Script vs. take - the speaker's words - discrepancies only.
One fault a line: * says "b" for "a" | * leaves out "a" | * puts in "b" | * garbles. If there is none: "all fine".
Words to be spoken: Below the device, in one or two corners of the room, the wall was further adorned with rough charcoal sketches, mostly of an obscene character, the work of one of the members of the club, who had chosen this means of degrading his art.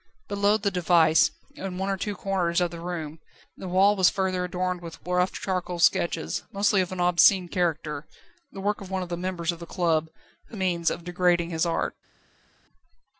* leaves out "had chosen this"